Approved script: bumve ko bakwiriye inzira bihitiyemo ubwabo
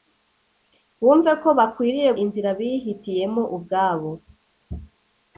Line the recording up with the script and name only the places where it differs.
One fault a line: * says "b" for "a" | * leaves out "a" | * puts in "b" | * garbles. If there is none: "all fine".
all fine